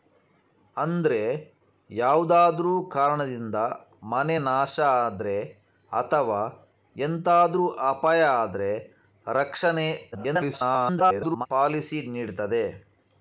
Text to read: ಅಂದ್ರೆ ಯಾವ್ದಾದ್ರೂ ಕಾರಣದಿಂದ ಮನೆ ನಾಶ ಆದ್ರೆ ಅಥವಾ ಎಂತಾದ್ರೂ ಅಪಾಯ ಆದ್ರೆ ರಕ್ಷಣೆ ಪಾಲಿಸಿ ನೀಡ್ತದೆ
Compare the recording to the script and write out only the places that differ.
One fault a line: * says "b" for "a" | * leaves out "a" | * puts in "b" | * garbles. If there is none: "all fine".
* garbles